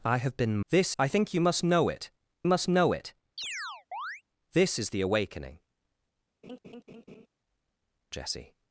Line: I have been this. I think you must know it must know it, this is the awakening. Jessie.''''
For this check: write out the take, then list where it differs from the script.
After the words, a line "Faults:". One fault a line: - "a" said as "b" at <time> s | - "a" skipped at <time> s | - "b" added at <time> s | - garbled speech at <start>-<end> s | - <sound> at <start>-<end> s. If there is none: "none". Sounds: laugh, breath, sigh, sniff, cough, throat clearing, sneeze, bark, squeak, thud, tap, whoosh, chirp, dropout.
I have been this. I think you must know it must know it, this is the awakening. Jessie.''''
Faults:
- chirp at 3.4-4.2 s
- laugh at 6.4-7.3 s